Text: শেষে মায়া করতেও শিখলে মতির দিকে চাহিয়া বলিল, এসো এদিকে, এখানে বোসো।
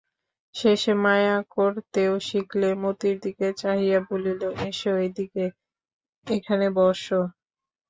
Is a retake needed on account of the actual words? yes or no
no